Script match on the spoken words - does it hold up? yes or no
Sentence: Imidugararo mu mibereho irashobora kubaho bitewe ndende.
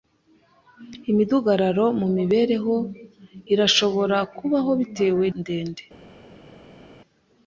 yes